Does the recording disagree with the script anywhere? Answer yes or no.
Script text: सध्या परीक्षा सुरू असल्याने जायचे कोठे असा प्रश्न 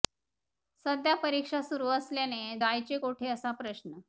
no